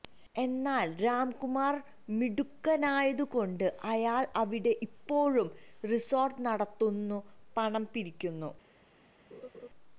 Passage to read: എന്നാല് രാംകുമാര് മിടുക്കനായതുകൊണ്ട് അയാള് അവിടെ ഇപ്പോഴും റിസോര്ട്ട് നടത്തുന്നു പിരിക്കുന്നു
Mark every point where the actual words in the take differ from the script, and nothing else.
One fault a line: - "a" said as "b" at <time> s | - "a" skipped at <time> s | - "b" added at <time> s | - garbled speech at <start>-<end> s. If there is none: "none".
- "പണം" added at 7.6 s